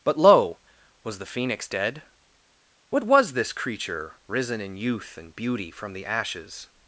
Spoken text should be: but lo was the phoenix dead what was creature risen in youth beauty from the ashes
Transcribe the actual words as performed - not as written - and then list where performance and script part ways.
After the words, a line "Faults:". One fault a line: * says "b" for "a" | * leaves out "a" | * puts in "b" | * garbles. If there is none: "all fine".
but lo was the phoenix dead what was this creature risen in youth and beauty from the ashes
Faults:
* puts in "this"
* puts in "and"